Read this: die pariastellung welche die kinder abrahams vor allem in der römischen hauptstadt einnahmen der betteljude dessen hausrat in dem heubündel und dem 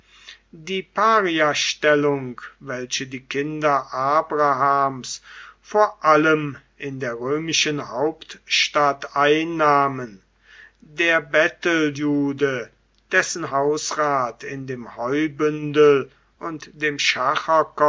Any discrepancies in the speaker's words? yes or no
no